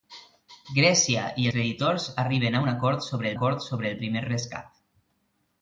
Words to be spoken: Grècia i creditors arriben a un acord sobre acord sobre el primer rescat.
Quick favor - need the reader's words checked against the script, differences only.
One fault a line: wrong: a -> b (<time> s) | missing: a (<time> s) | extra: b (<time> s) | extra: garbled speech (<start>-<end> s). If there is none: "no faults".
no faults